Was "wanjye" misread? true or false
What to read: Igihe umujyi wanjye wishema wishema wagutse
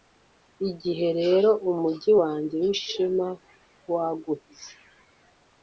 false